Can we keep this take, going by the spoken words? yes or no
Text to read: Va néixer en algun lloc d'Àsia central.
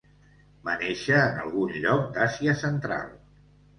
yes